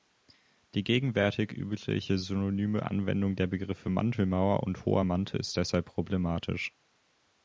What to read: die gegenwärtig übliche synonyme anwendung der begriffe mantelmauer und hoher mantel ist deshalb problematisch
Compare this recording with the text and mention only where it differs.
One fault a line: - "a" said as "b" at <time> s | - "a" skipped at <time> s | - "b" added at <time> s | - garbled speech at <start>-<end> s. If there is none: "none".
none